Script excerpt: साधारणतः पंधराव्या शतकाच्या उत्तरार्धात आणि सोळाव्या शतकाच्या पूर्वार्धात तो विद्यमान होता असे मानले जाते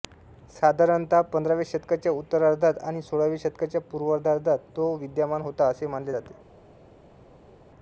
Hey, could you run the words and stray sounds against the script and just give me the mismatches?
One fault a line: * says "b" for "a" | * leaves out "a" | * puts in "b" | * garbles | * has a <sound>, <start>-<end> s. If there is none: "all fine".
all fine